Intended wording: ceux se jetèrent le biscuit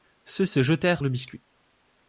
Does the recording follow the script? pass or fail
pass